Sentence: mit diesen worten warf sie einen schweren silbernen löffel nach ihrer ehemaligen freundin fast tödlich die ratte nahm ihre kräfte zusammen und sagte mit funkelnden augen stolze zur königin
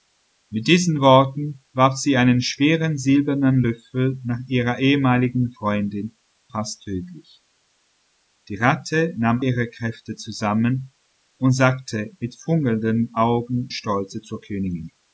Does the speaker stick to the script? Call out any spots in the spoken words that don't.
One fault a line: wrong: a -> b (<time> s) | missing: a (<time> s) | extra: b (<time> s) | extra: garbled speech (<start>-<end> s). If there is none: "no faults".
no faults